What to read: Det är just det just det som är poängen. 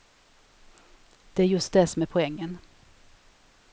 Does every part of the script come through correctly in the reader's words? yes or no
no